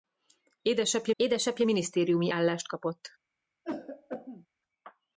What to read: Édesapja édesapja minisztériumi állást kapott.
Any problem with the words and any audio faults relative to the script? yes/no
yes